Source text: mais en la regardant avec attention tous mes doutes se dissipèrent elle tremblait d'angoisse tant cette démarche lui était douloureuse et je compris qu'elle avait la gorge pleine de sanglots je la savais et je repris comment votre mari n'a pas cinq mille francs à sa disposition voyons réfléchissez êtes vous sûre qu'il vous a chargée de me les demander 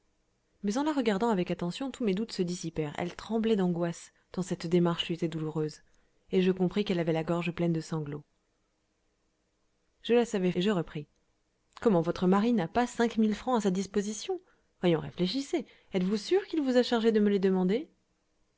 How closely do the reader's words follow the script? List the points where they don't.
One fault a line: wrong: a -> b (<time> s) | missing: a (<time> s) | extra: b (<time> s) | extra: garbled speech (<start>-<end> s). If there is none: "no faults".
no faults